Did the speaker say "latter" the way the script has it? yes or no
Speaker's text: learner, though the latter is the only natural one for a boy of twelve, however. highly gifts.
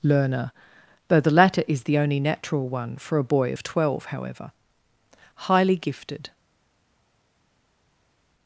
yes